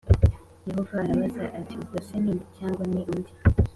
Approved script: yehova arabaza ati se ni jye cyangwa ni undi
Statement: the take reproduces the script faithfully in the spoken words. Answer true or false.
false